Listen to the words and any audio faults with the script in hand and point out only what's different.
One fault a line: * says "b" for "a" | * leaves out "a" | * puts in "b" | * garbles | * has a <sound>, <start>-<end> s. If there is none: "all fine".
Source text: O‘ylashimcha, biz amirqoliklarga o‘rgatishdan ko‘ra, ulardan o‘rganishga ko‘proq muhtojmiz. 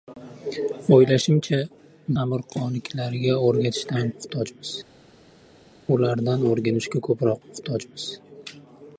* leaves out "biz"
* says "muhtojmiz" for "ko‘ra"